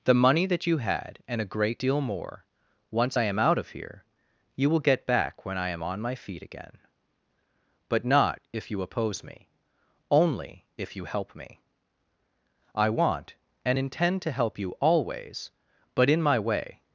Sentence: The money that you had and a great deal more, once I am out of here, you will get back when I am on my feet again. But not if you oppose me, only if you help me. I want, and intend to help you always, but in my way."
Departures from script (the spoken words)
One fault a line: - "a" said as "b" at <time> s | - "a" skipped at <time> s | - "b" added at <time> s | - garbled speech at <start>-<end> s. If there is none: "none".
none